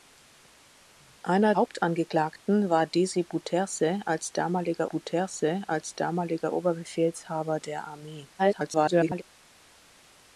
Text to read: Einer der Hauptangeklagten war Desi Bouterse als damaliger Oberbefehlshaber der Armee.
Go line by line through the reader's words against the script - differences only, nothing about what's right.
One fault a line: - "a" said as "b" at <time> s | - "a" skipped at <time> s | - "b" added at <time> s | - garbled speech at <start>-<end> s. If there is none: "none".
- "der" skipped at 1.5 s
- "Bouterse als damaliger" added at 4.8 s
- garbled speech at 8.4-9.2 s